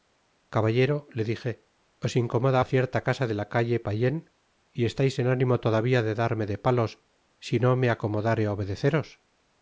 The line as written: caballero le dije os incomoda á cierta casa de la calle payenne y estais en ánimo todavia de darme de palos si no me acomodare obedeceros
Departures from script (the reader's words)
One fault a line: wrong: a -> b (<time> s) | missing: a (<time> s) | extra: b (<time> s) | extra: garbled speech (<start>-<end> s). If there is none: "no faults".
no faults